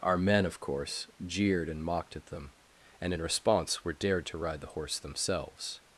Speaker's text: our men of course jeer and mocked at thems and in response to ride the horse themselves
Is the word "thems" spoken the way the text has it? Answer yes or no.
no